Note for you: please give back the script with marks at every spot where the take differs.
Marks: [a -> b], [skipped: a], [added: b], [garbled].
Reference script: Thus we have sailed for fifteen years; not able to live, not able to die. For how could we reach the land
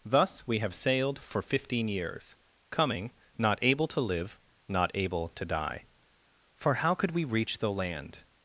Thus we have sailed for fifteen years; [added: coming] not able to live, not able to die. For how could we reach the land